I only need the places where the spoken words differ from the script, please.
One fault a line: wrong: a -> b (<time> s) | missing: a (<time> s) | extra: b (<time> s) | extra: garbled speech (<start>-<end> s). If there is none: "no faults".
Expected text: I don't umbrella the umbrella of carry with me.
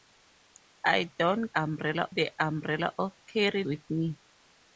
no faults